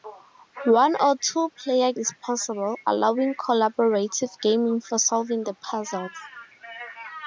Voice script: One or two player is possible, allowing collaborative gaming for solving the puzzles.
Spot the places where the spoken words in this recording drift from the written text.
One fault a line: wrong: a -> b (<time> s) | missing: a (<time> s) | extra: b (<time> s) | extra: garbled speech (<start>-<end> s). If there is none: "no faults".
no faults